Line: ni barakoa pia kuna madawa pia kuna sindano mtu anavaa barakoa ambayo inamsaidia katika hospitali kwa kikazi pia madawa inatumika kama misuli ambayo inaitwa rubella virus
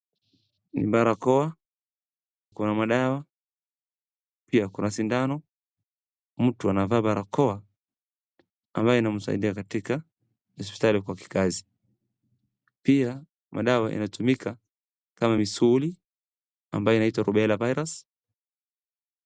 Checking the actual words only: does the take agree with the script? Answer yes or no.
no